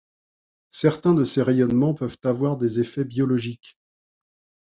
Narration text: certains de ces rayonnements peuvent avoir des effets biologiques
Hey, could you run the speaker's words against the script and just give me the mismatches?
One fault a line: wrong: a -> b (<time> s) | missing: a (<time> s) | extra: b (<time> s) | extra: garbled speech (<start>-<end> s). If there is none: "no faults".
no faults